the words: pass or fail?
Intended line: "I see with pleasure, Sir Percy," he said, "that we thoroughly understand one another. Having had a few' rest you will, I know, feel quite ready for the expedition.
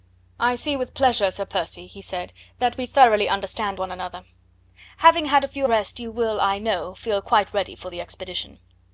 pass